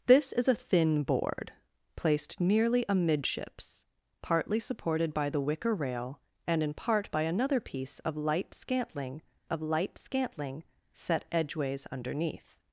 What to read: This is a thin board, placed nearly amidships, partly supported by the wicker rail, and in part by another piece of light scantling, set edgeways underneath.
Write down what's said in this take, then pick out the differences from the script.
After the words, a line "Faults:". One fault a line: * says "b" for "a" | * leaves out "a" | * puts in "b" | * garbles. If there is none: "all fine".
This is a thin board, placed nearly amidships, partly supported by the wicker rail, and in part by another piece of light scantling of light scantling, set edgeways underneath.
Faults:
* puts in "of light scantling"